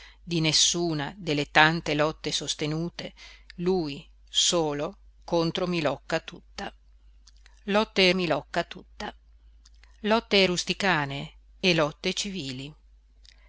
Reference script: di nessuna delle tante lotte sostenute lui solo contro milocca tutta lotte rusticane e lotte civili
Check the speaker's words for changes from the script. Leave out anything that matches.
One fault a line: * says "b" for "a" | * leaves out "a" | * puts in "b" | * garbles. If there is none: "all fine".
* puts in "milocca tutta lotte"